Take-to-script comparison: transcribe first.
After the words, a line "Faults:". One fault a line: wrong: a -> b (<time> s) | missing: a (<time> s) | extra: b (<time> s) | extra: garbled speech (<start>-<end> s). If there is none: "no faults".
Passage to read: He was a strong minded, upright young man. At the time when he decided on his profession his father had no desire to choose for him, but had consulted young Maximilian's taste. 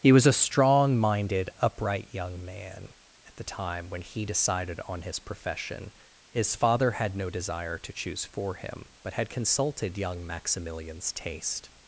He was a strong minded, upright young man. At the time when he decided on his profession his father had no desire to choose for him, but had consulted young Maximilian's taste.
Faults:
no faults